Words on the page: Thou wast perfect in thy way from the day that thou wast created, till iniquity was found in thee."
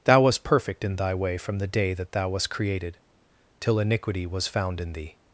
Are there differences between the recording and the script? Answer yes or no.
no